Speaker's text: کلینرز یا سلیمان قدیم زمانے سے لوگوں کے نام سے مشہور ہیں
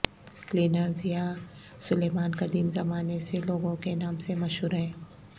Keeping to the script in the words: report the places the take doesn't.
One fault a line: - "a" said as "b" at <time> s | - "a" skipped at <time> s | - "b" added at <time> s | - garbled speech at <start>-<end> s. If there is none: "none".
none